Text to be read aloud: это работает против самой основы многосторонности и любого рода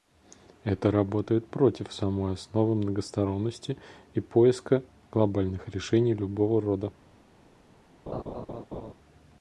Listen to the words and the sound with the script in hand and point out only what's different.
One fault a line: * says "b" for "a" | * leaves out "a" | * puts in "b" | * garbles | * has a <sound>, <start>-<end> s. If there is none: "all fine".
* puts in "поиска глобальных решений"
* has a laugh, 8.1-8.9 s